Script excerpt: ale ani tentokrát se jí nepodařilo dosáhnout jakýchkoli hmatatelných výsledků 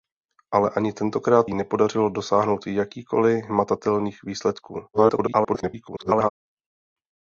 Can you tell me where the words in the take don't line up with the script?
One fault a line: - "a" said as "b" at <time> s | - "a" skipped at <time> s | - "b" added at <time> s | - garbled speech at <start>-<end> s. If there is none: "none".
- "se" skipped at 1.5 s
- garbled speech at 4.9-6.3 s